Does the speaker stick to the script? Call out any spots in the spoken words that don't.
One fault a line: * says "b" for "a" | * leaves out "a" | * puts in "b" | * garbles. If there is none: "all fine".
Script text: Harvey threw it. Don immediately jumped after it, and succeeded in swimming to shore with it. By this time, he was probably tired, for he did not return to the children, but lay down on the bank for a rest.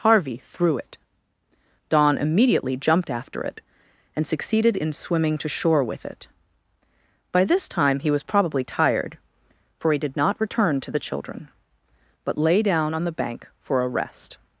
all fine